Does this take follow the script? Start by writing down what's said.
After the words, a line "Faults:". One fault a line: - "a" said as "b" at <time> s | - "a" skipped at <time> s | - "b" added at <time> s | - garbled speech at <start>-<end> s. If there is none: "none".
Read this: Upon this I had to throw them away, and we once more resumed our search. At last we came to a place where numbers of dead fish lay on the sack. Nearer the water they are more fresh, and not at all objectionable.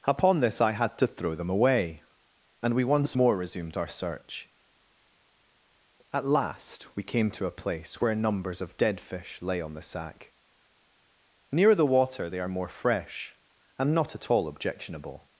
Upon this I had to throw them away, and we once more resumed our search. At last we came to a place where numbers of dead fish lay on the sack. Nearer the water they are more fresh, and not at all objectionable.
Faults:
none